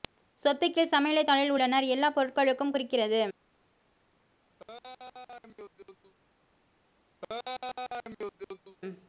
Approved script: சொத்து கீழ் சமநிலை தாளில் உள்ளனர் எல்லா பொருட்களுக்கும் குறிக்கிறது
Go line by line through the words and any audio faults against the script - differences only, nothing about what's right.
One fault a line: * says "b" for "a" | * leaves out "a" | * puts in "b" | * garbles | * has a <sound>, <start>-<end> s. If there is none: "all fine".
* has a laugh, 4.6-6.1 s
* has a laugh, 7.2-8.8 s